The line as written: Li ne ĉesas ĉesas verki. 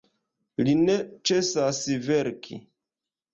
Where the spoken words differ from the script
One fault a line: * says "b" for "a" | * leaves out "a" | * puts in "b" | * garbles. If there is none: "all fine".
* leaves out "ĉesas"